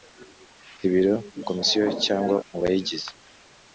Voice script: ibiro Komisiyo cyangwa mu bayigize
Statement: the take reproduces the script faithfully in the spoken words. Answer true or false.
true